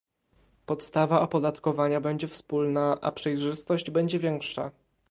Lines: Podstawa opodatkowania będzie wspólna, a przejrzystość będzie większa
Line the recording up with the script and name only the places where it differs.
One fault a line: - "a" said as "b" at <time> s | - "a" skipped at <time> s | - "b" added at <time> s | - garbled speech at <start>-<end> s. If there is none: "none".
none